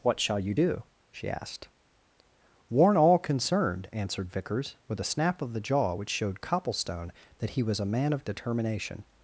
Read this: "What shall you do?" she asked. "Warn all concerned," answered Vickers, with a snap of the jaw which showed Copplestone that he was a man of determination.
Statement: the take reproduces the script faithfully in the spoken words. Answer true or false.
true